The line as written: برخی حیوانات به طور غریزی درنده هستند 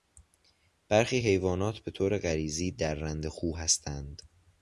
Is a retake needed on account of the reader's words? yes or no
yes